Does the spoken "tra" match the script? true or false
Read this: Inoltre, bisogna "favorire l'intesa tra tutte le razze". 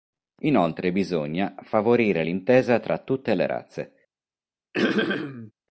true